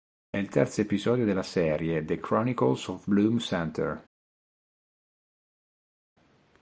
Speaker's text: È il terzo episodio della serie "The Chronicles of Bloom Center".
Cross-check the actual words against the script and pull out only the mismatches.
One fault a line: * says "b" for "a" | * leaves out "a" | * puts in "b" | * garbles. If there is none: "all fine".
all fine